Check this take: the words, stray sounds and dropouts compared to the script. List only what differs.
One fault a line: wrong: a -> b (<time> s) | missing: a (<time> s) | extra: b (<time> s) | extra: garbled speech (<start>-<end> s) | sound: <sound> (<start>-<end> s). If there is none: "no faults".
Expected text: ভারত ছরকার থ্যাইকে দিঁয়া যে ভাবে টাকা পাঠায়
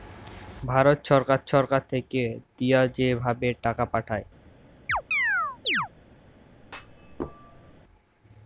extra: ছরকার (1.5 s)
sound: chirp (4.9-5.9 s)
sound: thud (6.6-7.8 s)